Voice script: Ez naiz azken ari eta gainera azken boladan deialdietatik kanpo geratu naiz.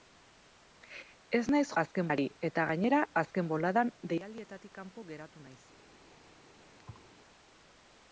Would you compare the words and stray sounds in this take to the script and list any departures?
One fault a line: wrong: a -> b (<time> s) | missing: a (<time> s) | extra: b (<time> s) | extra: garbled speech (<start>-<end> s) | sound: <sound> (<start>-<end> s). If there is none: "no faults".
sound: thud (6.8-7.1 s)